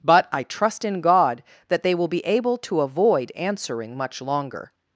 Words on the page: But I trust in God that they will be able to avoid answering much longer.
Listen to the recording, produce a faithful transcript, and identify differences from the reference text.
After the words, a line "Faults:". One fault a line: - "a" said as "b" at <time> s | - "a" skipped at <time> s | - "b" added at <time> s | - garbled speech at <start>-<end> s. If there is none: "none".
But I trust in God that they will be able to avoid answering much longer.
Faults:
none